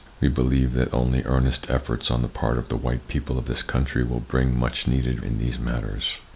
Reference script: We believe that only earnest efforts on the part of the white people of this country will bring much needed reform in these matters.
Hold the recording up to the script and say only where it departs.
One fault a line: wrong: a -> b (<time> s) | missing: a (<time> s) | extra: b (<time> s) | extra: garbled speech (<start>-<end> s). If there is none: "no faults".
missing: reform (5.2 s)